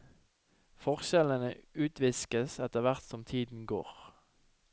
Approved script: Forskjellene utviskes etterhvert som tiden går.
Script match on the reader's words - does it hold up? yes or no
yes